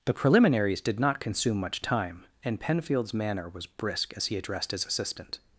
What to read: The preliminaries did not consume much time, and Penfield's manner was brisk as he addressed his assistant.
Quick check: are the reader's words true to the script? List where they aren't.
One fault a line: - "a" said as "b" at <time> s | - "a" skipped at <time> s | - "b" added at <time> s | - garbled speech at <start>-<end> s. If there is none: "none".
none